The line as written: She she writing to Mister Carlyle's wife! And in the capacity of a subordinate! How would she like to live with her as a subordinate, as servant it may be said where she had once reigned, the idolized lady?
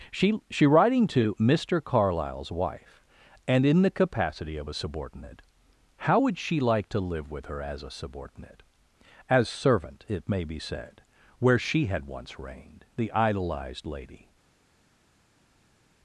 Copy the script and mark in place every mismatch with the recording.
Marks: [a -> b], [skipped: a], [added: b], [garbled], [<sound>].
She she writing to Mister Carlyle's wife! And in the capacity of a subordinate! How would she like to live with her as a subordinate, as servant it may be said where she had once reigned, the idolized lady?